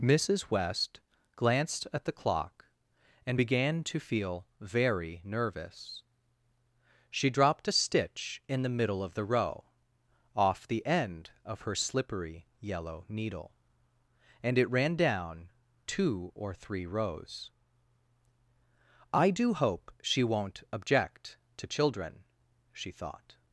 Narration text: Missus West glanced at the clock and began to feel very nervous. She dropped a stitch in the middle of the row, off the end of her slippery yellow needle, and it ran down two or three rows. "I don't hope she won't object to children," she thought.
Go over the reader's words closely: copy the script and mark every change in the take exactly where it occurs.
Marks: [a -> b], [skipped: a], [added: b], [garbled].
Missus West glanced at the clock and began to feel very nervous. She dropped a stitch in the middle of the row, off the end of her slippery yellow needle, and it ran down two or three rows. "I [don't -> do] hope she won't object to children," she thought.